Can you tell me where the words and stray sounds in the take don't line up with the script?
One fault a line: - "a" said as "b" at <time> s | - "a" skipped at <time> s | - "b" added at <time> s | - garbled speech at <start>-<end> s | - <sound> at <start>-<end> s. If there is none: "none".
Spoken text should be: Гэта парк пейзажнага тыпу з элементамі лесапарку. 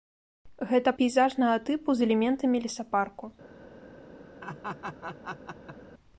- "парк" skipped at 0.9 s
- laugh at 4.4-5.8 s